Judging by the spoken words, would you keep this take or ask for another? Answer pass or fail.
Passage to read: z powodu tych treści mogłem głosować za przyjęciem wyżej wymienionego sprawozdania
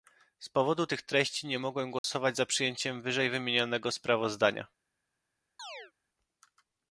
fail